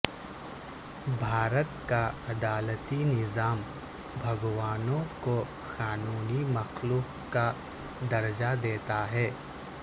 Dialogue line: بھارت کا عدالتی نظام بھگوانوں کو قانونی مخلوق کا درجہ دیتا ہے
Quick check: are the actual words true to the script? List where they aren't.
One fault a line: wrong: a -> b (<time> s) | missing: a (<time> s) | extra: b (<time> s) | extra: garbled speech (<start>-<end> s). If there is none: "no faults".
no faults